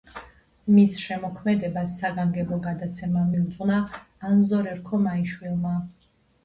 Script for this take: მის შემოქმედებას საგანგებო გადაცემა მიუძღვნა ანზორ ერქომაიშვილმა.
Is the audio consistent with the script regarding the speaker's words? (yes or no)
yes